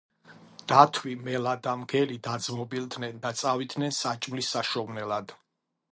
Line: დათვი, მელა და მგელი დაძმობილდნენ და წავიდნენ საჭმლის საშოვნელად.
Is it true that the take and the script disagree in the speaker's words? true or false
false